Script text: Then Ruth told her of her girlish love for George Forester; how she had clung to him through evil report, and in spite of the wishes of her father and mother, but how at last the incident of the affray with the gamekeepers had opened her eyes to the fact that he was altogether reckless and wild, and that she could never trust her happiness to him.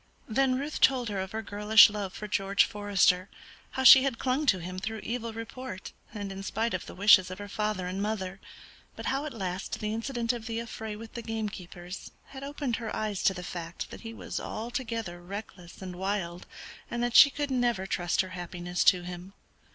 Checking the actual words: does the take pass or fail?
pass